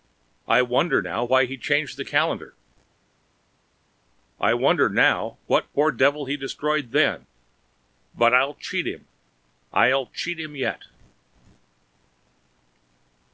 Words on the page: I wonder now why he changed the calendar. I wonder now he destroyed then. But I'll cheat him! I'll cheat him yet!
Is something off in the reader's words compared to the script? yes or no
yes